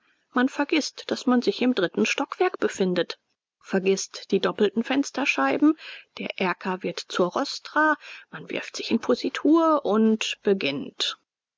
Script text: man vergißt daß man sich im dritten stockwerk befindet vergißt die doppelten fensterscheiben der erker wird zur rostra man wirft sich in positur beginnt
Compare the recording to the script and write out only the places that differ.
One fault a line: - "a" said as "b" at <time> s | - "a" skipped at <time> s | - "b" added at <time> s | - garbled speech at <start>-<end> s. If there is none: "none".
- "und" added at 9.8 s